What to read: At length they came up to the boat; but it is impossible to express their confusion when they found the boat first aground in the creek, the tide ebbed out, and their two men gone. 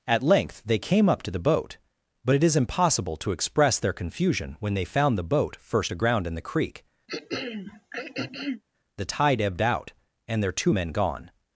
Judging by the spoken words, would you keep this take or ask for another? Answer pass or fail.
pass